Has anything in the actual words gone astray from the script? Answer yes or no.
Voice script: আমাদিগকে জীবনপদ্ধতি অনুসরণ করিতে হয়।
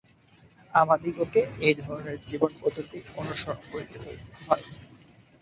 yes